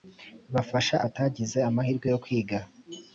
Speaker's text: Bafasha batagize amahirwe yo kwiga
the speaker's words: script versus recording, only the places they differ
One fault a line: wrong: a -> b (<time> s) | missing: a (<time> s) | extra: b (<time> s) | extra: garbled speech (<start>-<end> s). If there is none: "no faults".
no faults